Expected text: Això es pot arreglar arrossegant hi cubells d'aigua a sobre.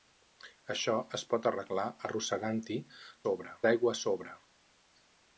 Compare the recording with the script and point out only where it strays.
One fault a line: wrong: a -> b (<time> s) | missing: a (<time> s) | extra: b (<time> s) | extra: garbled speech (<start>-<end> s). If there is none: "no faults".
wrong: cubells -> sobre (3.2 s)